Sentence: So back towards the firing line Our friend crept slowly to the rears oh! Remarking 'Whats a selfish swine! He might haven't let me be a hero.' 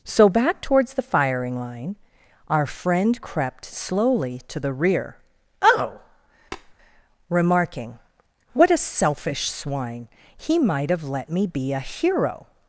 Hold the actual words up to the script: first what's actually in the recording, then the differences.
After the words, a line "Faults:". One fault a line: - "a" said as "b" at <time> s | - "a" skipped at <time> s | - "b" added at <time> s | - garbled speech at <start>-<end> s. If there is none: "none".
So back towards the firing line Our friend crept slowly to the rear oh! Remarking 'What a selfish swine! He might have let me be a hero.'
Faults:
- "rears" said as "rear" at 4.7 s
- "Whats" said as "What" at 8.5 s
- "haven't" said as "have" at 10.9 s